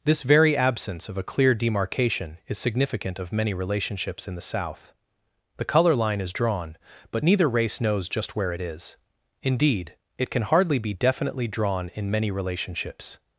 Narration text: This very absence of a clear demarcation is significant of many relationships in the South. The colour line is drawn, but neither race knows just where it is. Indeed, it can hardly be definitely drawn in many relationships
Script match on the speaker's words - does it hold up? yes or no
yes